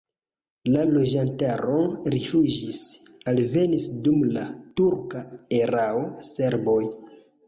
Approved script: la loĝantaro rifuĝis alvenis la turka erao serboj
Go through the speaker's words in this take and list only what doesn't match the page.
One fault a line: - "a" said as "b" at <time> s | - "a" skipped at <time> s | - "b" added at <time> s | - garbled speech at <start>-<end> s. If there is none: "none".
- "dum" added at 4.1 s